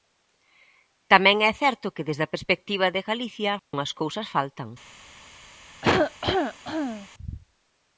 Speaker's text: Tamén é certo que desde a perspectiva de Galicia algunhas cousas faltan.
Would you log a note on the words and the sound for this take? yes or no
yes